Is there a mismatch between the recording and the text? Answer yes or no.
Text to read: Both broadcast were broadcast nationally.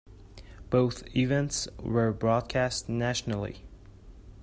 yes